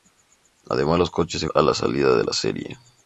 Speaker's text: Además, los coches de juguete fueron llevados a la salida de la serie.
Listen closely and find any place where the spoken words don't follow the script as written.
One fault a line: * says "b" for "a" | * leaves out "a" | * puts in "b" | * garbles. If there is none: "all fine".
* leaves out "juguete fueron llevados"